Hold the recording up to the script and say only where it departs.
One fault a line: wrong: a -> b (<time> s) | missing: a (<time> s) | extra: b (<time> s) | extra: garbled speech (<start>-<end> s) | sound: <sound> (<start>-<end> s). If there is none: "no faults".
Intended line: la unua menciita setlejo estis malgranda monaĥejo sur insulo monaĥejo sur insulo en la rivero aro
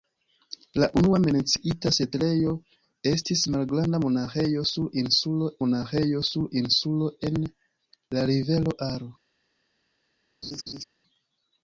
sound: laugh (10.4-10.8 s)